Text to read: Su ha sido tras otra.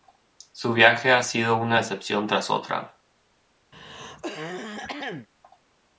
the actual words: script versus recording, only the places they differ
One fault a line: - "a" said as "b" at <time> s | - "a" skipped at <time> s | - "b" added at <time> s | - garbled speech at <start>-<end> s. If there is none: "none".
- "viaje" added at 0.7 s
- "una decepción" added at 1.6 s